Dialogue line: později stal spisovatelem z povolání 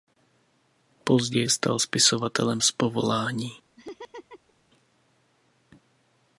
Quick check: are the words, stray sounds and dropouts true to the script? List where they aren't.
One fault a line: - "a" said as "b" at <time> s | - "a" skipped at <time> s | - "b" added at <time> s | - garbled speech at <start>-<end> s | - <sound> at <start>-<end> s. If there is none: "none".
- laugh at 3.8-4.5 s